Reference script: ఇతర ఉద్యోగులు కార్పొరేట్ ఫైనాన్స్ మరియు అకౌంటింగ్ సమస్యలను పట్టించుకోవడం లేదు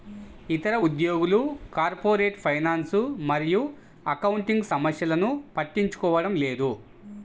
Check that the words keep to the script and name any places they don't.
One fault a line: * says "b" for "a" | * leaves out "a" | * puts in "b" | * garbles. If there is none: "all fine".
all fine